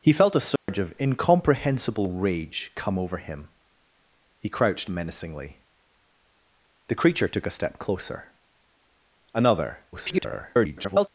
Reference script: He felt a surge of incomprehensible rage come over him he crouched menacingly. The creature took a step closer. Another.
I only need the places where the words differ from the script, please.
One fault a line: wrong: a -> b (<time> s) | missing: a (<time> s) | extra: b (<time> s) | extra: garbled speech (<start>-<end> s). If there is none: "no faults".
extra: garbled speech (9.9-11.1 s)